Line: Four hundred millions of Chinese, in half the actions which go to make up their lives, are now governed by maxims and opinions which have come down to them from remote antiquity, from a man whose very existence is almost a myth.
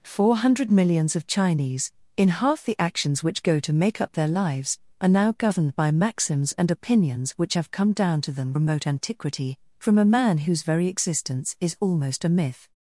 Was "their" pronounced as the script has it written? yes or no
yes